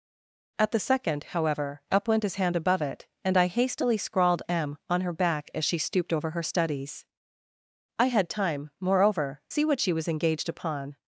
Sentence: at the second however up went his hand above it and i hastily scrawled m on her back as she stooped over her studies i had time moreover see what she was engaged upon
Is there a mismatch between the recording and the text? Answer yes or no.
no